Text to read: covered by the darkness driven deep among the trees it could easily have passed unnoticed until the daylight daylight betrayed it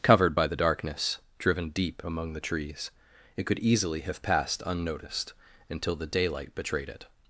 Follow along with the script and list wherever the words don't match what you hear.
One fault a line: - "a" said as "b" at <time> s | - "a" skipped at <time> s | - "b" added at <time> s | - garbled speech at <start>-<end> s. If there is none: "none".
- "daylight" skipped at 6.5 s